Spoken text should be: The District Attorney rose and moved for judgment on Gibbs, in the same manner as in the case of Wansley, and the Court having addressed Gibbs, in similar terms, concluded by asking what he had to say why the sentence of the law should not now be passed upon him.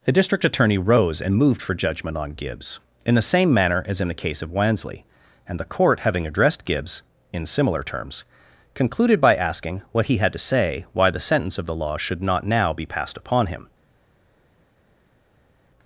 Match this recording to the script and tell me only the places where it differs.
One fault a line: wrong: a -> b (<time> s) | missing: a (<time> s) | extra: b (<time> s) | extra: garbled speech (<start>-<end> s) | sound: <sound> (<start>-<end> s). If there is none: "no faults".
no faults